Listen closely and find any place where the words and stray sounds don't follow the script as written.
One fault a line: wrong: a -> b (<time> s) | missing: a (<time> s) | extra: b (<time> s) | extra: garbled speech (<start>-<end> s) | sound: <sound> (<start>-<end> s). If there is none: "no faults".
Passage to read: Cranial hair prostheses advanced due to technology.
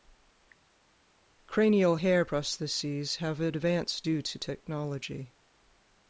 extra: have (3.2 s)